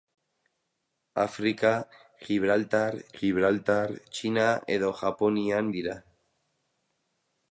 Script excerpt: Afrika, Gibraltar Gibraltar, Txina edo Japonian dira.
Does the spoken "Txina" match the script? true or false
true